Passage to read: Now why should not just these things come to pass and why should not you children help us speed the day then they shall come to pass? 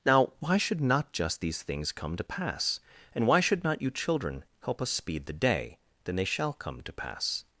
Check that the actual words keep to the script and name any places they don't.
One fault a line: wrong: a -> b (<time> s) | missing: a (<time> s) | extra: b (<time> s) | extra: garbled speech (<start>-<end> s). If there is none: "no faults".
no faults